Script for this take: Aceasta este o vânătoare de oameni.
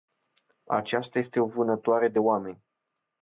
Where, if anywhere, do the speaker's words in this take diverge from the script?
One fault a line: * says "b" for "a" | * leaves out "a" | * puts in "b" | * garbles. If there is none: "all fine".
all fine